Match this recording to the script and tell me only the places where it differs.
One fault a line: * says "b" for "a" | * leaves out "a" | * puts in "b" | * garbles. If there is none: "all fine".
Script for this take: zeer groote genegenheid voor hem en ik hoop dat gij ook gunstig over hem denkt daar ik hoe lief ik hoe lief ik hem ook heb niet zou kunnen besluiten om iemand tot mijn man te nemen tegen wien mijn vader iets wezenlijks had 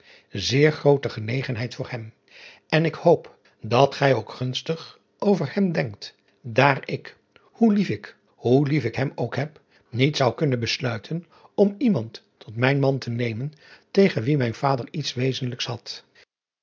all fine